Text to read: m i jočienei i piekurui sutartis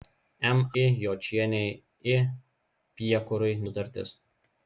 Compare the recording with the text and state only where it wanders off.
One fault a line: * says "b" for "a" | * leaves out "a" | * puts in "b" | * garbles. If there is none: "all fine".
all fine